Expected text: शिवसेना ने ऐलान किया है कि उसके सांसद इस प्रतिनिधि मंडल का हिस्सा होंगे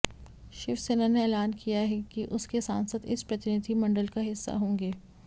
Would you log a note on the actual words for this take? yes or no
no